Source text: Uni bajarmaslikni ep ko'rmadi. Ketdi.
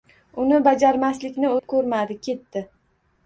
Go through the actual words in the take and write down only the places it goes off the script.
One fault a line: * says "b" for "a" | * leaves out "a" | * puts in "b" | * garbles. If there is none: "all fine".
all fine